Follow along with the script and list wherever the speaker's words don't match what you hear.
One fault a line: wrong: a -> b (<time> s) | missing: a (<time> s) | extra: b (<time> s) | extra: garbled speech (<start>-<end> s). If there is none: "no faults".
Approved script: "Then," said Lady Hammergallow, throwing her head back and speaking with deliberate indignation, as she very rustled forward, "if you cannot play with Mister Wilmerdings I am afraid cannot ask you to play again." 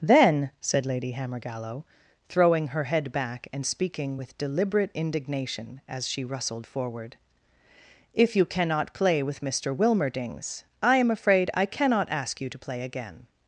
missing: very (6.2 s)
extra: I (11.5 s)